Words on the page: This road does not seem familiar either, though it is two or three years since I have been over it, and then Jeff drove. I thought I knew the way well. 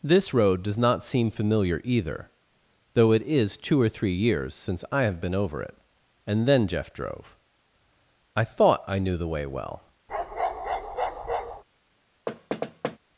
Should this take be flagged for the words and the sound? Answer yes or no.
yes